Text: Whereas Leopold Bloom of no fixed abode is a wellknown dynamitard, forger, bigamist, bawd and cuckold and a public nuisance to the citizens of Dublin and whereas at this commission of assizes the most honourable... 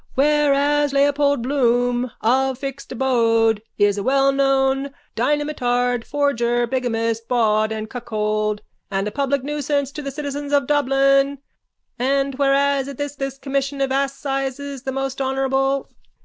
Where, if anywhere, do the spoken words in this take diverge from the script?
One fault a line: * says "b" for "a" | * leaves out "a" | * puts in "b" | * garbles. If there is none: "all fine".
* leaves out "no"
* puts in "this"